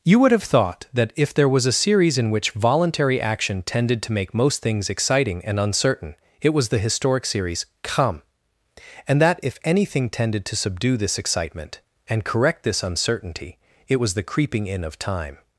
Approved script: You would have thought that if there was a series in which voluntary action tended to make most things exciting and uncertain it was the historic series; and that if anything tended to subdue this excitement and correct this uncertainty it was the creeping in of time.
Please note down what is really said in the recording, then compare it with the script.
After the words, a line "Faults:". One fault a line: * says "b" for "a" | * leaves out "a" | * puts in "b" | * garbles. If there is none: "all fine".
You would have thought that if there was a series in which voluntary action tended to make most things exciting and uncertain it was the historic series; come and that if anything tended to subdue this excitement and correct this uncertainty it was the creeping in of time.
Faults:
* puts in "come"